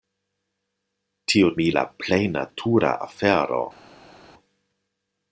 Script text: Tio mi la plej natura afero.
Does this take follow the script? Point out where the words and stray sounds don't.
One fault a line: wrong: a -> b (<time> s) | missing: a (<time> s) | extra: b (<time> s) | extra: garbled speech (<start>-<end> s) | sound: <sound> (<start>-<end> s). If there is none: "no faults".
no faults